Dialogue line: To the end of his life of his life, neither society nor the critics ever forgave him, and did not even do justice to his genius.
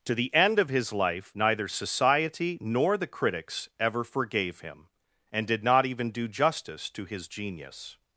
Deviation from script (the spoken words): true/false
true